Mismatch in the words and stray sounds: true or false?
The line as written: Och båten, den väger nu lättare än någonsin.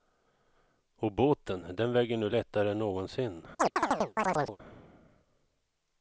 true